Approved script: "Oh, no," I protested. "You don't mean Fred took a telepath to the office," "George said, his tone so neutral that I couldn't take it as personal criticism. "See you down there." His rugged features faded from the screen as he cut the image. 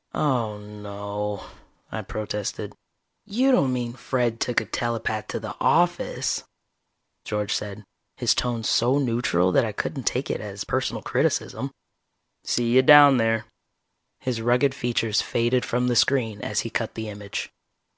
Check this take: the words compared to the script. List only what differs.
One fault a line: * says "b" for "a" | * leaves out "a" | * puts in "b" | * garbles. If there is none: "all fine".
all fine